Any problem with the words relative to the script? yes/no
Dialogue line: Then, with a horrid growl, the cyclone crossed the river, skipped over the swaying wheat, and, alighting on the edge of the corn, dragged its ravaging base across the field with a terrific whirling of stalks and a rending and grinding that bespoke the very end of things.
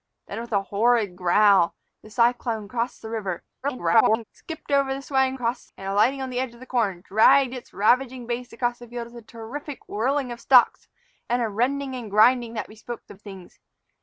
yes